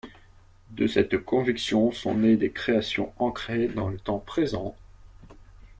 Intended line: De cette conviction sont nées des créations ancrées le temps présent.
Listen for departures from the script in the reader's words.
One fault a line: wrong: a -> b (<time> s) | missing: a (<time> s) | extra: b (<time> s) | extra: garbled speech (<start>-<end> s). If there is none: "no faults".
extra: dans (3.7 s)